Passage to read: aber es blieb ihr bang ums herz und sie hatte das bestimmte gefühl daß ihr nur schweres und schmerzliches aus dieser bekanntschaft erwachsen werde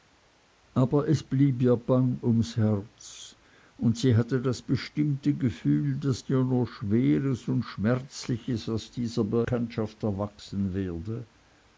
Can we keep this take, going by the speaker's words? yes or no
yes